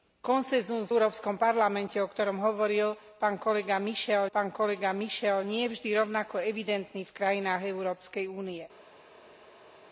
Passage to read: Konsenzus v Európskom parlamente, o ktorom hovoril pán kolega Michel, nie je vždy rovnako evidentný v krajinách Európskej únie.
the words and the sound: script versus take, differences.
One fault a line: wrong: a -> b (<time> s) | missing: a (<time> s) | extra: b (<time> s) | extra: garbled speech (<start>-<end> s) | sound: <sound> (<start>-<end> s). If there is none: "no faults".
missing: v (0.9 s)
extra: pán kolega Michel (4.3 s)